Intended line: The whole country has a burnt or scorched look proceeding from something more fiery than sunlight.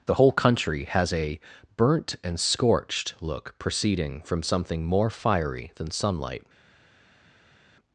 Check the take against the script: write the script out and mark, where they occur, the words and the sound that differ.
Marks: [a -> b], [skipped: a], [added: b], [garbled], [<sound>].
The whole country has a burnt [or -> and] scorched look proceeding from something more fiery than sunlight.